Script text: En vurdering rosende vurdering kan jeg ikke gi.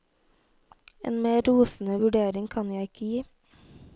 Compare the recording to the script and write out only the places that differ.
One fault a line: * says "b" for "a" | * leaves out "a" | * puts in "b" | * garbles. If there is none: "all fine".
* says "mer" for "vurdering"